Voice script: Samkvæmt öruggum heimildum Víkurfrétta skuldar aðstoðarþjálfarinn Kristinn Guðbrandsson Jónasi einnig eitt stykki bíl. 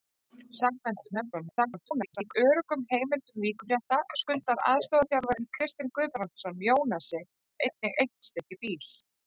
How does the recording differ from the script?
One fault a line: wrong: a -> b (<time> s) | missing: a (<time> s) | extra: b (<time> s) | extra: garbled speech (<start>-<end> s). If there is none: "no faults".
extra: garbled speech (1.1-2.3 s)